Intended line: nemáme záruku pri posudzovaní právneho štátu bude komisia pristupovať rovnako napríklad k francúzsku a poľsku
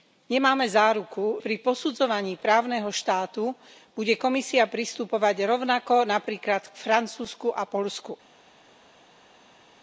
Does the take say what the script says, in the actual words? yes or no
yes